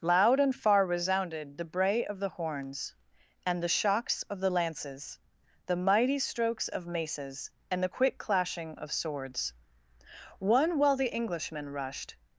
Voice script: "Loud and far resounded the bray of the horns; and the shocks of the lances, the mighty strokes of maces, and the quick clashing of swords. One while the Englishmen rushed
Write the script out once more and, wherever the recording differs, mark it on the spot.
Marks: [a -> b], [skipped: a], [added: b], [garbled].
"Loud and far resounded the bray of the horns; and the shocks of the lances, the mighty strokes of maces, and the quick clashing of swords. One while the Englishmen rushed